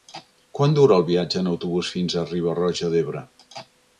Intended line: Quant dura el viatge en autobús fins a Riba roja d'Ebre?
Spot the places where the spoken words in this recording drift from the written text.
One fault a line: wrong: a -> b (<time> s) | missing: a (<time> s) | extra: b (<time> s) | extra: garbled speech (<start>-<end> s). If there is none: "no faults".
no faults